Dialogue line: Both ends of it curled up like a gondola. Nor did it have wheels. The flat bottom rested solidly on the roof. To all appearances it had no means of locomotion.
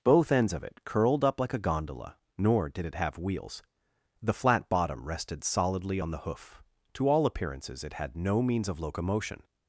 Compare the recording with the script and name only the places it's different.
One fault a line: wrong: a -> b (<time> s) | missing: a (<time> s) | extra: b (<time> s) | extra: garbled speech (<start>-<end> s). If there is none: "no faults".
wrong: roof -> hoof (6.2 s)